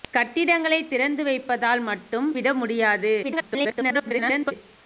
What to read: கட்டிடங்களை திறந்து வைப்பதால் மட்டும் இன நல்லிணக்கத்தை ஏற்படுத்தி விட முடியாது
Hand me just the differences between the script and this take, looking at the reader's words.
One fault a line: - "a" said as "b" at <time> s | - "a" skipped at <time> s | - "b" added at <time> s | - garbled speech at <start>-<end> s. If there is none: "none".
- "இன நல்லிணக்கத்தை ஏற்படுத்தி" skipped at 2.3 s
- garbled speech at 3.2-4.5 s